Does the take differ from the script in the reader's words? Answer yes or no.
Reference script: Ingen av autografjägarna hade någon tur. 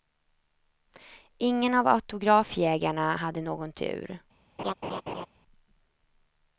no